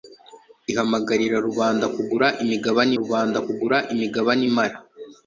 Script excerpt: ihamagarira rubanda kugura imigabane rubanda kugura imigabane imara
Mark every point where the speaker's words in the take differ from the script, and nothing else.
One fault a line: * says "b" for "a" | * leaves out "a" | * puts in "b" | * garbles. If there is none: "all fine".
all fine